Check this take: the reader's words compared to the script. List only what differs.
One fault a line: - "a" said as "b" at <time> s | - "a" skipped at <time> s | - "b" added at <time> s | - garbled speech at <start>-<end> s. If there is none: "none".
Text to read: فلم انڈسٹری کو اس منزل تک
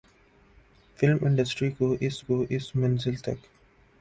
- "کو اس" added at 2.2 s